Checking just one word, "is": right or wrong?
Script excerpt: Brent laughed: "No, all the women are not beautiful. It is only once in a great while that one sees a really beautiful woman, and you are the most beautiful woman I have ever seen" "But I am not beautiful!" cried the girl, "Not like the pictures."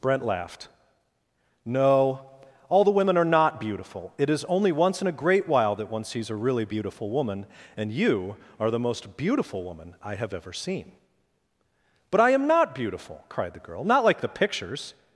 right